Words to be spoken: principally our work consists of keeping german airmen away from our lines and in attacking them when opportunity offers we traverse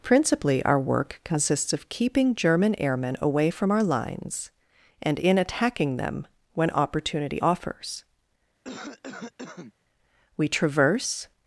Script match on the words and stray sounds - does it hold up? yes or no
no